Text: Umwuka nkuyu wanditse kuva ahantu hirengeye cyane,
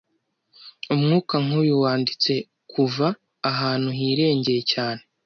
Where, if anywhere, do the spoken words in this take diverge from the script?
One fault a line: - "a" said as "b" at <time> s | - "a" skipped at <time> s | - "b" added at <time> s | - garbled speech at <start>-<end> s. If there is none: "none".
none